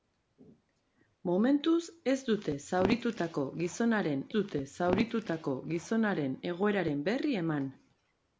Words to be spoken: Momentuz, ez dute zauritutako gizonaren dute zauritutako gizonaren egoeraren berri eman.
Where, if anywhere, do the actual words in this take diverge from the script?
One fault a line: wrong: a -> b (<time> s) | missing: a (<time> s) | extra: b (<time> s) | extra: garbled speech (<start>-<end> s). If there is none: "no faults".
no faults